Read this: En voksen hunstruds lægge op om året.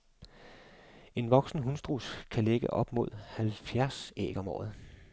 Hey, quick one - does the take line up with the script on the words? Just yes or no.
no